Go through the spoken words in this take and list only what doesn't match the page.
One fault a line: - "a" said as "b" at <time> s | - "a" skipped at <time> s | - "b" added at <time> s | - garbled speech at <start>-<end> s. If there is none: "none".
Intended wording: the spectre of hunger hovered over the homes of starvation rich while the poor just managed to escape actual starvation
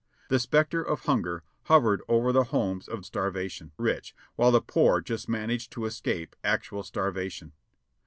none